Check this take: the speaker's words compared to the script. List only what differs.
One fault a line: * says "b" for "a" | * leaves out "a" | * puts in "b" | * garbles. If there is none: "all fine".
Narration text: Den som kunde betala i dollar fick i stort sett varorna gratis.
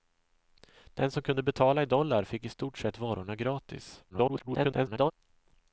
* garbles